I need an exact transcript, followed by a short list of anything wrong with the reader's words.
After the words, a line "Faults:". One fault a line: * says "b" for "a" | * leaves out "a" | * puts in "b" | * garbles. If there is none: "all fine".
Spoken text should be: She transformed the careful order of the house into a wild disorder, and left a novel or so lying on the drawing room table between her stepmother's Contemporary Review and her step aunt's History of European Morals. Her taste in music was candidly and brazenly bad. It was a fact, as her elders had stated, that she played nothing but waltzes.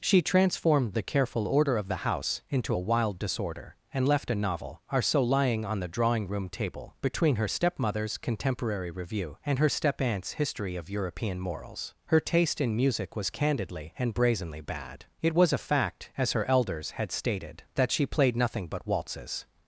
She transformed the careful order of the house into a wild disorder, and left a novel are so lying on the drawing room table between her stepmother's Contemporary Review and her step aunt's History of European Morals. Her taste in music was candidly and brazenly bad. It was a fact, as her elders had stated, that she played nothing but waltzes.
Faults:
* says "are" for "or"